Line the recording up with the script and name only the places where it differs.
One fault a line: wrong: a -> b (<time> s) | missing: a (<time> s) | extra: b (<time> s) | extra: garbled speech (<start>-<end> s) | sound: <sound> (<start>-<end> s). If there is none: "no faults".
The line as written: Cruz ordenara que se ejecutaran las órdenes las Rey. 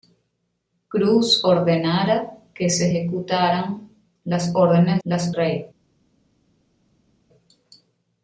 no faults